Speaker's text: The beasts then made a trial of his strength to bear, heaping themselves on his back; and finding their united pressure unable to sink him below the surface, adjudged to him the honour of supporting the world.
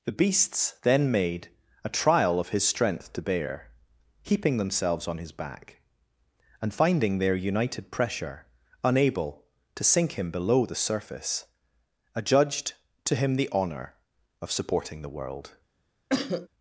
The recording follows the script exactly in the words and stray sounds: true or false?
false